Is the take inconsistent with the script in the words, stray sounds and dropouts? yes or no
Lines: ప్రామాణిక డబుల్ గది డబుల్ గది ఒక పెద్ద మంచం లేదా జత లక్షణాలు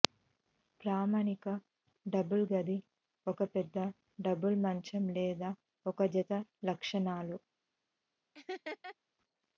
yes